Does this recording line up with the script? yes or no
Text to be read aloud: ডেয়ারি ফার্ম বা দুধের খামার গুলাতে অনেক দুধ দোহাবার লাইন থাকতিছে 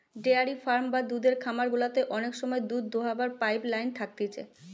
no